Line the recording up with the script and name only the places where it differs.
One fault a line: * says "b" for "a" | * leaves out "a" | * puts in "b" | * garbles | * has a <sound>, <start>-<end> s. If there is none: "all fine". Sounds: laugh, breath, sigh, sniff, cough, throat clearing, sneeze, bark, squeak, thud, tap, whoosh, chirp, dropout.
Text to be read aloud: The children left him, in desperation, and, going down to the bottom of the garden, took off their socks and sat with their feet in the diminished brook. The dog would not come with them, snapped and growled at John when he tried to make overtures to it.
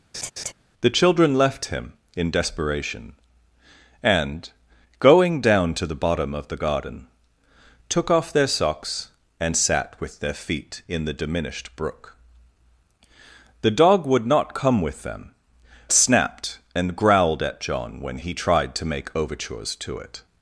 * has a laugh, 0.1-0.5 s